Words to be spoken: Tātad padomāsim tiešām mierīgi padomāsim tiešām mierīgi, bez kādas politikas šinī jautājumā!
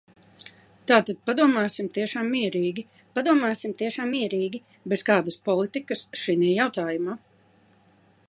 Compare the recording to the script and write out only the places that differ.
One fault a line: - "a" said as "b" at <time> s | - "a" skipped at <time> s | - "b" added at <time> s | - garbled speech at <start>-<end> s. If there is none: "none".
none